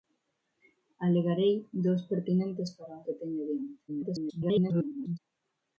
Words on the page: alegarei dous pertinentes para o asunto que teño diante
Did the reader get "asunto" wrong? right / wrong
wrong